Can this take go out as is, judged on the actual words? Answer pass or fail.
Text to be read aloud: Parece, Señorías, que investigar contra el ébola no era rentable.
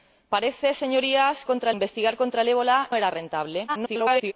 fail